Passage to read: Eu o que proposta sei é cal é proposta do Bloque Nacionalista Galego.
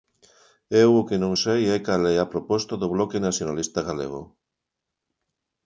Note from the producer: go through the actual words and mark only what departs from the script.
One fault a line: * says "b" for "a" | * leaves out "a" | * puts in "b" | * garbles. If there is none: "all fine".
* says "non" for "proposta"
* puts in "a"